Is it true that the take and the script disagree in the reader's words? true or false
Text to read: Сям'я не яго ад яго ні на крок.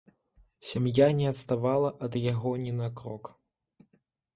true